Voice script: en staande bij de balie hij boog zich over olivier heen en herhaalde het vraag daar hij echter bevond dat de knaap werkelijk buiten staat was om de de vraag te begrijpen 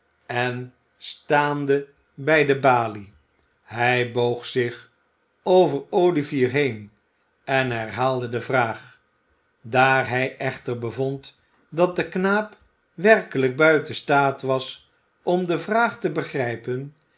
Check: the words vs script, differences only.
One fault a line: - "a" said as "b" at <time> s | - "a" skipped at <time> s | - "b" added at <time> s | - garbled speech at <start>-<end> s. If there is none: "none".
- "het" said as "de" at 8.3 s
- "de" skipped at 15.6 s